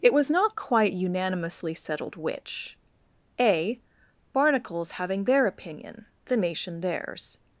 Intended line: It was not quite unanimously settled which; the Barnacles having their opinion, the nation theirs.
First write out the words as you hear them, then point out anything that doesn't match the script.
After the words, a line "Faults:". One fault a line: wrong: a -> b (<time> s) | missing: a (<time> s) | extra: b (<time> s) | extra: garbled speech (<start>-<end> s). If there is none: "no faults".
It was not quite unanimously settled which; a Barnacles having their opinion, the nation theirs.
Faults:
wrong: the -> a (3.4 s)